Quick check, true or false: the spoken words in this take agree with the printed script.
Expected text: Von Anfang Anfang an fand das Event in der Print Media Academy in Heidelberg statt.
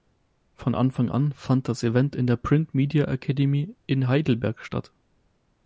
false